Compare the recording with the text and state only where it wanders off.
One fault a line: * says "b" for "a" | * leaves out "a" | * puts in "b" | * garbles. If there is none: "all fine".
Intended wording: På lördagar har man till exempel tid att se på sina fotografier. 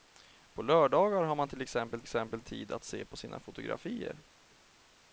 * puts in "exempel"